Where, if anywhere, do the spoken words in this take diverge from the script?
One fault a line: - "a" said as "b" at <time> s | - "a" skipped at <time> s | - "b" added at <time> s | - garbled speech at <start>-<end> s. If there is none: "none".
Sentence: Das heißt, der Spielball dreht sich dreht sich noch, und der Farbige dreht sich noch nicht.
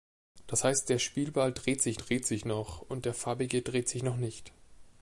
none